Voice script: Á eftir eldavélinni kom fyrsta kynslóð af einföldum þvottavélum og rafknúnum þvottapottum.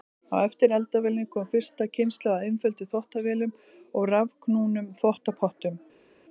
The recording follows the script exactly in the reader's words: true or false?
true